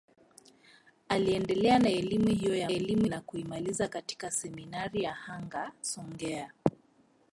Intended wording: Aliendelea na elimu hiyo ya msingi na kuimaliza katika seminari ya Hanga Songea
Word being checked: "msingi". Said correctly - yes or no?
no